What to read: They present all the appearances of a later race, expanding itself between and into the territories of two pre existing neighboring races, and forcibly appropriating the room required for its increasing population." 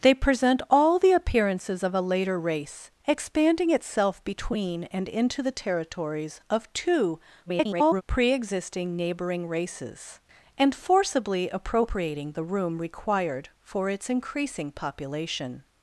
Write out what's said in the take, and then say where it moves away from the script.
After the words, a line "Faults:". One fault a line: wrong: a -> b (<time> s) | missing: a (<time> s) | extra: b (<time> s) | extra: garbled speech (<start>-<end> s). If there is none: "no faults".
They present all the appearances of a later race, expanding itself between and into the territories of two [garbled] pre existing neighboring races, and forcibly appropriating the room required for its increasing population."
Faults:
extra: garbled speech (7.5-8.0 s)